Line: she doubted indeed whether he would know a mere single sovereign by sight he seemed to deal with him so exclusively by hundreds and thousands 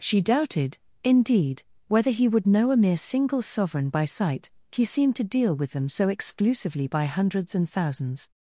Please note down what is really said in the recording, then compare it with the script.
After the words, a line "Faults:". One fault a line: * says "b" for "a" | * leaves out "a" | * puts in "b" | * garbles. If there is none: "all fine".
she doubted indeed whether he would know a mere single sovereign by sight he seemed to deal with them so exclusively by hundreds and thousands
Faults:
* says "them" for "him"